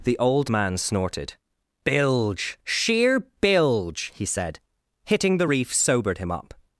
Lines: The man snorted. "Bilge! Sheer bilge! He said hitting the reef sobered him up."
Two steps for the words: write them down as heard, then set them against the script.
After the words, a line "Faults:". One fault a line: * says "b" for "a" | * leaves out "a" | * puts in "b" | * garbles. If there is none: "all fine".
The old man snorted. "Bilge! Sheer bilge! He said hitting the reef sobered him up."
Faults:
* puts in "old"